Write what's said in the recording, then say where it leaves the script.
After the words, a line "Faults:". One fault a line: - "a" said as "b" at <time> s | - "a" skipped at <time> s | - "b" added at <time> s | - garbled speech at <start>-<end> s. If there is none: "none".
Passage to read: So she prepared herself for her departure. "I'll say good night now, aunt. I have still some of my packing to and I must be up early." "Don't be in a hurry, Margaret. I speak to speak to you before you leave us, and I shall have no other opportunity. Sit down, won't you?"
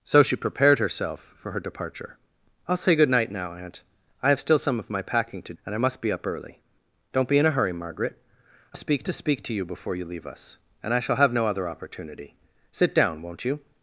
So she prepared herself for her departure. "I'll say good night now, aunt. I have still some of my packing to and I must be up early." "Don't be in a hurry, Margaret. I speak to speak to you before you leave us, and I shall have no other opportunity. Sit down, won't you?"
Faults:
none